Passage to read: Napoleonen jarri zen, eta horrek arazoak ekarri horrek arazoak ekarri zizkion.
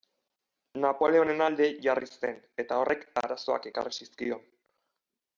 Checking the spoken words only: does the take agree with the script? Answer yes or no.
no